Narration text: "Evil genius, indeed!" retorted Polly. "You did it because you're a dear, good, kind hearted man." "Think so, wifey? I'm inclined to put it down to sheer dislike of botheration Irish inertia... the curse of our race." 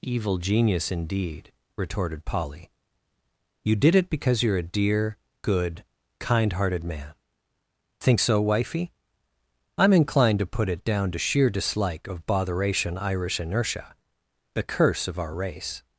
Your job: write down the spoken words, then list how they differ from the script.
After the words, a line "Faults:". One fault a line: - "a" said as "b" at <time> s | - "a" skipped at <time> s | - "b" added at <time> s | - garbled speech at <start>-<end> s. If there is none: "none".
"Evil genius, indeed!" retorted Polly. "You did it because you're a dear, good, kind hearted man." "Think so, wifey? I'm inclined to put it down to sheer dislike of botheration Irish inertia... the curse of our race."
Faults:
none